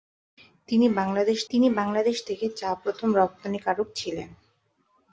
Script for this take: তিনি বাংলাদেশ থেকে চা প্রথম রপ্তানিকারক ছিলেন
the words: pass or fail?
fail